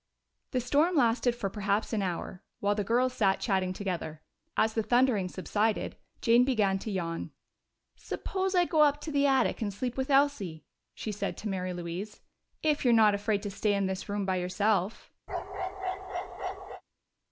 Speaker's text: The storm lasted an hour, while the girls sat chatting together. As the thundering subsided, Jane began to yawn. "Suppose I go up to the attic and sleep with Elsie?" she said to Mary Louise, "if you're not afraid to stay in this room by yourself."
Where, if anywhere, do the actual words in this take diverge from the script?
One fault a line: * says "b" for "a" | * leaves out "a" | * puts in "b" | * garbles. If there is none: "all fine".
* puts in "for perhaps"